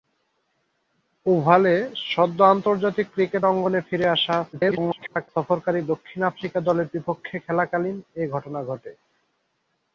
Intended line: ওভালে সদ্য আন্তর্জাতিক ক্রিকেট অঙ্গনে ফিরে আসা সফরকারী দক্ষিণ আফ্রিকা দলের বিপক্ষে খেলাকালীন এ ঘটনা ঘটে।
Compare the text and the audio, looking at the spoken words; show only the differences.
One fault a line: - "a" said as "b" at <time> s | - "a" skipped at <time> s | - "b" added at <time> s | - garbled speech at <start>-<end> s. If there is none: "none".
- garbled speech at 4.5-5.3 s